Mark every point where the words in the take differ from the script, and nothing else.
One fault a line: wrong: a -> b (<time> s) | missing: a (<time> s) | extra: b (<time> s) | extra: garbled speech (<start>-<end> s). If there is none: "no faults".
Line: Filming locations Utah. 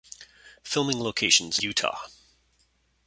no faults